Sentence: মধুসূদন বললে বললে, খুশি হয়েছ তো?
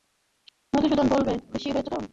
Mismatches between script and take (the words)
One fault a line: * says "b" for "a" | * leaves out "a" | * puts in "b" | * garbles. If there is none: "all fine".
* leaves out "বললে"